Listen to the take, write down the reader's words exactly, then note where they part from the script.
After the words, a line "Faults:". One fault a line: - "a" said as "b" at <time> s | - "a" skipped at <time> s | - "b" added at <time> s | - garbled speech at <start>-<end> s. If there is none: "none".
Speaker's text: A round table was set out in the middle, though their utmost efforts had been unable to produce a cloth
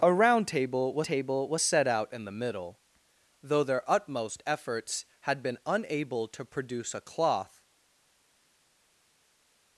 A round table was table was set out in the middle, though their utmost efforts had been unable to produce a cloth
Faults:
- "table was" added at 1.0 s